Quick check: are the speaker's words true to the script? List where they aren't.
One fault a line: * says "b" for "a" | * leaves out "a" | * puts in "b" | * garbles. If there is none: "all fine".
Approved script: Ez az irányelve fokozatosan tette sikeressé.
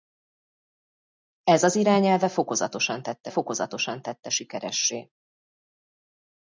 * puts in "fokozatosan tette"